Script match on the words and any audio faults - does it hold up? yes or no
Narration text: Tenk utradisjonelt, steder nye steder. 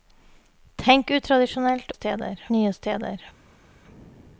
yes